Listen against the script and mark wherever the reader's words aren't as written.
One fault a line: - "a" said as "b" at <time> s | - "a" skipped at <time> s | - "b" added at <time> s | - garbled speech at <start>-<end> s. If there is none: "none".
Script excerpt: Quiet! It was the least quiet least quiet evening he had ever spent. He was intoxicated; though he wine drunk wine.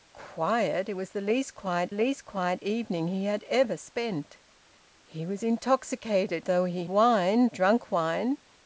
none